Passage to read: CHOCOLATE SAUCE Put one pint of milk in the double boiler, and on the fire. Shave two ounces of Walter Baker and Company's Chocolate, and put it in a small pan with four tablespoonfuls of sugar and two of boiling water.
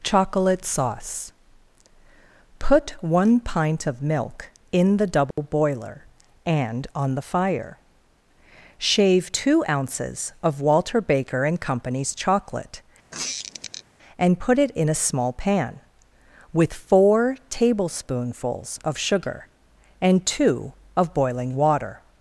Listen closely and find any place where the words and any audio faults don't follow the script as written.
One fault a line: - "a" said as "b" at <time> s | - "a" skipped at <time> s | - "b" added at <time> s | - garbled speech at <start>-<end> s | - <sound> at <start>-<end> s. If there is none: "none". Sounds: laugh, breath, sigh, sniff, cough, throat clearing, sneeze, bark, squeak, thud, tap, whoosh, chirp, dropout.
- dropout at 5.3-5.4 s
- squeak at 13.1-13.8 s